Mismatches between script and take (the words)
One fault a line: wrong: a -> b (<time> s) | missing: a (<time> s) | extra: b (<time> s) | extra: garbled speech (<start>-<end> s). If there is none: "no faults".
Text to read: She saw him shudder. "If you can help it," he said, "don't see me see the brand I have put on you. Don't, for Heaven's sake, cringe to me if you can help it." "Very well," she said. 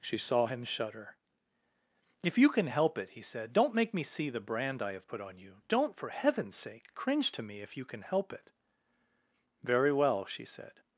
wrong: see -> make (3.8 s)